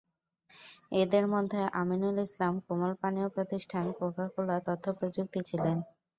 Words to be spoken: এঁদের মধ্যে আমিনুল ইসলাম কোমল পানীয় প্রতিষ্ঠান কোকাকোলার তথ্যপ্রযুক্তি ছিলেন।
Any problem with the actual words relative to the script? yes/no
no